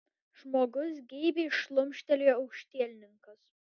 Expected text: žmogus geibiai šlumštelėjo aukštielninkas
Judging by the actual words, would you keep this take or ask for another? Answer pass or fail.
pass